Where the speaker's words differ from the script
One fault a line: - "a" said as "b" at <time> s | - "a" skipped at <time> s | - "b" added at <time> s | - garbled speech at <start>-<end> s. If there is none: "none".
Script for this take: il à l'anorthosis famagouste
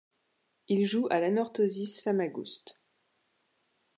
- "joue" added at 0.9 s